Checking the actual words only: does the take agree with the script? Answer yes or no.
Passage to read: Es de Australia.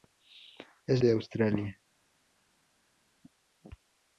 yes